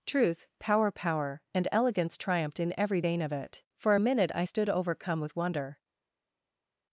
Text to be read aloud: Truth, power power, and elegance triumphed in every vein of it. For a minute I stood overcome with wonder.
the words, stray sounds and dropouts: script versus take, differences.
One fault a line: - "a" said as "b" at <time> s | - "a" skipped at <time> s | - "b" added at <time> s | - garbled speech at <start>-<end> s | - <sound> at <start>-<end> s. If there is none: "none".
none